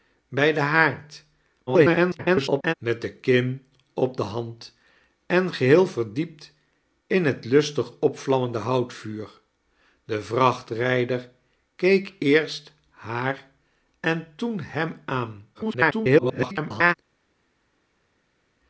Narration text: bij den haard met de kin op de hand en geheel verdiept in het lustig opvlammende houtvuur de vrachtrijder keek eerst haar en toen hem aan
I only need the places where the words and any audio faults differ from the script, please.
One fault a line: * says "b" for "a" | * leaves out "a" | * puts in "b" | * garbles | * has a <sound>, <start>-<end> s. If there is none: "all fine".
* garbles
* garbles